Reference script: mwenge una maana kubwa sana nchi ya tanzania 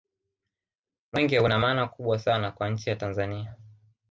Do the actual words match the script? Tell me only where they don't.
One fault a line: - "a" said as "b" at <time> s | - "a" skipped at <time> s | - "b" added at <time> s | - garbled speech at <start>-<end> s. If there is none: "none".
- "kwa" added at 2.5 s